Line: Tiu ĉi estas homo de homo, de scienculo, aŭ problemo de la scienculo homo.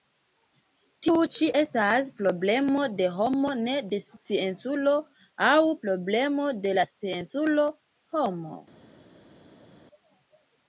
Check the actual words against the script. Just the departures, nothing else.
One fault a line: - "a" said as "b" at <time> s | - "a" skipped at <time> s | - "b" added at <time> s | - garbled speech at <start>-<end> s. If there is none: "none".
- "homo" said as "problemo" at 2.2 s
- "ne" added at 3.7 s